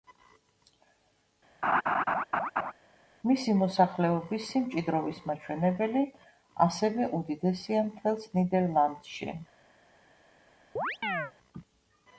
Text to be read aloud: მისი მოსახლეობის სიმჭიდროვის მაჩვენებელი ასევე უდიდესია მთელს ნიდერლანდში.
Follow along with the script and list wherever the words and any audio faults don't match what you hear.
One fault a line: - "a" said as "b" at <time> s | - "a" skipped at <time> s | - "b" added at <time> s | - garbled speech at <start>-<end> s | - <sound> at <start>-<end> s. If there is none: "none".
- laugh at 1.6-2.7 s
- chirp at 10.8-11.3 s